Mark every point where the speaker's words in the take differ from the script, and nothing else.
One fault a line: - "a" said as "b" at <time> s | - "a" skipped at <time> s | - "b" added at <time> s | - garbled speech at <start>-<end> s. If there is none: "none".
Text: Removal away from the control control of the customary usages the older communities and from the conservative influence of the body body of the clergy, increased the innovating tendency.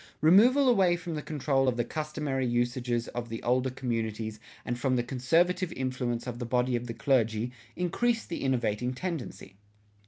- "control" skipped at 1.7 s
- "of" added at 3.1 s
- "body" skipped at 6.8 s